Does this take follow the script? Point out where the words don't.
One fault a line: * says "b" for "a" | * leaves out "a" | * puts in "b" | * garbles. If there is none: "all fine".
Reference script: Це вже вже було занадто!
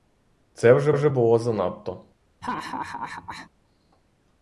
all fine